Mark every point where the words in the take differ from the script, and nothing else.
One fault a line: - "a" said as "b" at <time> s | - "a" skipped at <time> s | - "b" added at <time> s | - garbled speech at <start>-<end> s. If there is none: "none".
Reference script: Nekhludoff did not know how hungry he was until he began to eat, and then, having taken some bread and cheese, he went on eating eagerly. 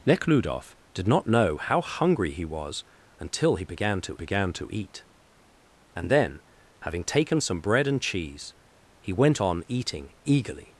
- "began to" added at 4.1 s